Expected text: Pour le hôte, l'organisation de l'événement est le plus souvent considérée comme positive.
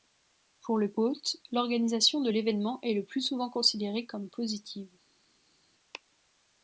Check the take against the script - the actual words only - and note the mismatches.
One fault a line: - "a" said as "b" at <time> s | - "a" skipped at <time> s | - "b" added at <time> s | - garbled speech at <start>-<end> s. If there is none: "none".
none